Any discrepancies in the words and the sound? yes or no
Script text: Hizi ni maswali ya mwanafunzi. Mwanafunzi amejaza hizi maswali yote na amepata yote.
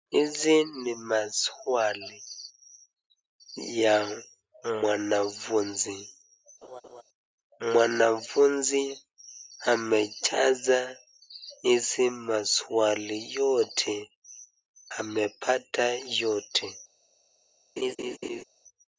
yes